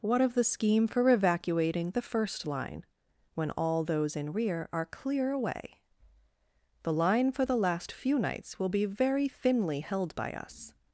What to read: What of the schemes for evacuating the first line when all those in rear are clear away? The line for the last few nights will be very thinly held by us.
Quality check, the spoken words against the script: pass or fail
fail